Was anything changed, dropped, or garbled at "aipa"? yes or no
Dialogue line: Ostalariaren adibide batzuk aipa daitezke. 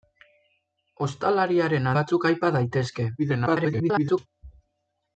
no